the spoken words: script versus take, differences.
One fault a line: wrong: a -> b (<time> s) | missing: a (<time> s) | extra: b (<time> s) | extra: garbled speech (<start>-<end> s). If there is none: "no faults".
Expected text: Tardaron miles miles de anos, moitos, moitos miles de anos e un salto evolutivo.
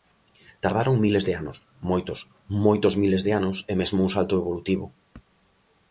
missing: miles (1.2 s)
extra: mesmo (3.8 s)